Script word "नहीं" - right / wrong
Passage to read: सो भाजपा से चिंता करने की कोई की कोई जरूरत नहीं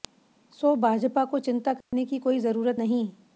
right